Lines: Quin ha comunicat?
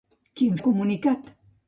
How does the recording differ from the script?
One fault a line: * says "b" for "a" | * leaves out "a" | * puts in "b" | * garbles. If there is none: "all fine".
all fine